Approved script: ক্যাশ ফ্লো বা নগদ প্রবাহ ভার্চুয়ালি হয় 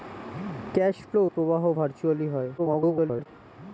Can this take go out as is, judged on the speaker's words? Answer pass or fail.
fail